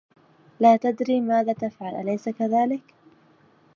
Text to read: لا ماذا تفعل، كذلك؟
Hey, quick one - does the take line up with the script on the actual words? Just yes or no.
no